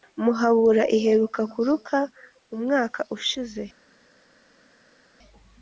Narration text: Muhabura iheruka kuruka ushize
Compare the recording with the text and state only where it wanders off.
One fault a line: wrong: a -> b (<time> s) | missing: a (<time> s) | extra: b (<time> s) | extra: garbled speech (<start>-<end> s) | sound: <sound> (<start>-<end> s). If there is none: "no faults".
extra: umwaka (2.5 s)